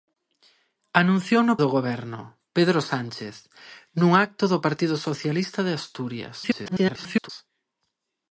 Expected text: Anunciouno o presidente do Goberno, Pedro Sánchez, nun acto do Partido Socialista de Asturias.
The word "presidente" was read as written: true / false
false